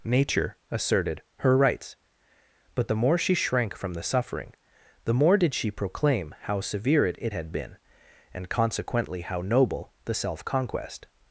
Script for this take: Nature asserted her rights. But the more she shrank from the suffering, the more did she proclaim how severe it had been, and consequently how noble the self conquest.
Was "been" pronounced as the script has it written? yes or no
yes